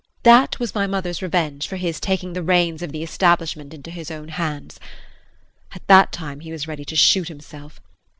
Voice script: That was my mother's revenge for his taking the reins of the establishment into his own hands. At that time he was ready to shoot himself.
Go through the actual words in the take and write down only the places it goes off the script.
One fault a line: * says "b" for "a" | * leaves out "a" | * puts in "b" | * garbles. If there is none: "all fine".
all fine